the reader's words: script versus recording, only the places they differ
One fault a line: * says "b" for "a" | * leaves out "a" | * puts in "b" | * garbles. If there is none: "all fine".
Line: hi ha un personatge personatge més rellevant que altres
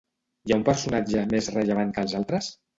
* leaves out "personatge"
* puts in "els"